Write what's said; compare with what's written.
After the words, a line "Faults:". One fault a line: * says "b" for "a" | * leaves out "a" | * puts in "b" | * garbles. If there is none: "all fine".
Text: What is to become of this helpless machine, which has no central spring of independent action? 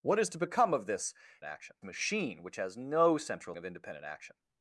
What is to become of this action machine, which has no central of independent action?
Faults:
* says "action" for "helpless"
* leaves out "spring"